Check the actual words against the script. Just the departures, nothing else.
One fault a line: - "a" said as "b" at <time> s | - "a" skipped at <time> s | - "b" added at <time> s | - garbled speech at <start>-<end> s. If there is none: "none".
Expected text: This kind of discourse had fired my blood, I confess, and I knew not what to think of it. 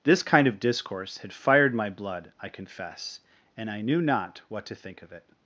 none